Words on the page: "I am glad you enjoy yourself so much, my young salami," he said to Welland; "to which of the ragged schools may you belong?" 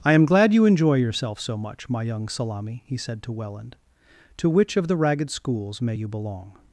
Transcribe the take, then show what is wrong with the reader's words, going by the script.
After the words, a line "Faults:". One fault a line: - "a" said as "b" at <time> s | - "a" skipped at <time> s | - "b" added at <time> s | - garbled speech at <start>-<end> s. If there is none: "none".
"I am glad you enjoy yourself so much, my young salami," he said to Welland; "to which of the ragged schools may you belong?"
Faults:
none